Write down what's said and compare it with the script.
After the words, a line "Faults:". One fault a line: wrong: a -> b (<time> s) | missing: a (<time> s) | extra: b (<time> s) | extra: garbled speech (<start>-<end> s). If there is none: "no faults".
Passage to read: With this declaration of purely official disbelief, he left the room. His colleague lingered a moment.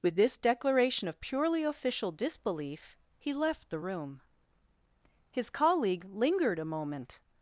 With this declaration of purely official disbelief, he left the room. His colleague lingered a moment.
Faults:
no faults